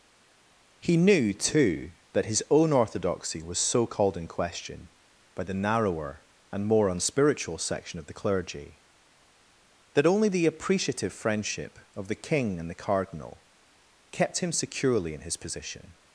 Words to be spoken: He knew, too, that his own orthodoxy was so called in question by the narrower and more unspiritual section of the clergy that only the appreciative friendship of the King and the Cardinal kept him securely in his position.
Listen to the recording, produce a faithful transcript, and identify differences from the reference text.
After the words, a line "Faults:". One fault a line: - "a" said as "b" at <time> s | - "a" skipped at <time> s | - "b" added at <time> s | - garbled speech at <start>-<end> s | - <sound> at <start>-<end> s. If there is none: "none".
He knew, too, that his own orthodoxy was so called in question by the narrower and more unspiritual section of the clergy that only the appreciative friendship of the King and the Cardinal kept him securely in his position.
Faults:
none